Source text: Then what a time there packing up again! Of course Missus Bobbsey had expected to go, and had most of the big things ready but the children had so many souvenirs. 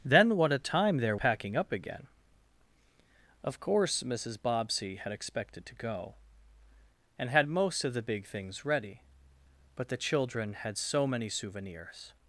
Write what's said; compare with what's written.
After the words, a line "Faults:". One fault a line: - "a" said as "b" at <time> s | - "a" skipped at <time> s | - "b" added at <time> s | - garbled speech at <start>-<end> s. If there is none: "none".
Then what a time there packing up again! Of course Missus Bobbsey had expected to go, and had most of the big things ready but the children had so many souvenirs.
Faults:
none